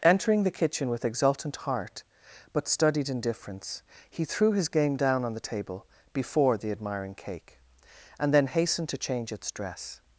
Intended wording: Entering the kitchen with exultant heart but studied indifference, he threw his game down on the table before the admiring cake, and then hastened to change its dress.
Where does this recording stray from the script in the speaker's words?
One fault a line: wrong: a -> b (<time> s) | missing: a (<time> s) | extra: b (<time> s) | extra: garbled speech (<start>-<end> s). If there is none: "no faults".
no faults